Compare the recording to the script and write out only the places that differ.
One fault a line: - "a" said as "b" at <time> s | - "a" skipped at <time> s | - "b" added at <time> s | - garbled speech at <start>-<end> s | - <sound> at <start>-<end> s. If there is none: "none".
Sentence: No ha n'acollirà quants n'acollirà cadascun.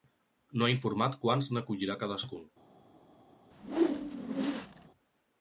- "n'acollirà" said as "informat" at 0.8 s
- whoosh at 3.5-4.9 s